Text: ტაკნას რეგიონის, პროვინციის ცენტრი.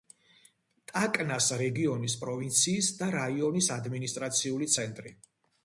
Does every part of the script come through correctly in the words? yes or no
no